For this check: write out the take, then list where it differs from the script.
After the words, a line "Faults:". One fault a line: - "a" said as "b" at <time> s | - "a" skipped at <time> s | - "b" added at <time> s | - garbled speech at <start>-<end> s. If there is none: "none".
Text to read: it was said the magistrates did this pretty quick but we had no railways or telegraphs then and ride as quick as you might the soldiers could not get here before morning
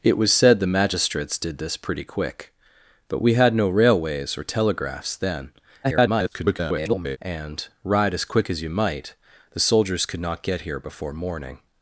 it was said the magistrates did this pretty quick but we had no railways or telegraphs then [garbled] and ride as quick as you might the soldiers could not get here before morning
Faults:
- garbled speech at 5.8-7.2 s